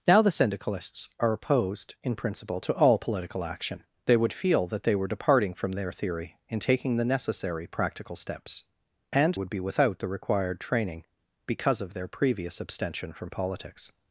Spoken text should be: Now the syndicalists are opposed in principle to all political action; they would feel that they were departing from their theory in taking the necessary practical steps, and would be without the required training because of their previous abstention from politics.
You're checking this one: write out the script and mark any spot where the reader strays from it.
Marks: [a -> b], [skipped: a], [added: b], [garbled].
Now the syndicalists are opposed in principle to all political action; they would feel that they were departing from their theory in taking the necessary practical steps, and would be without the required training because of their previous abstention from politics.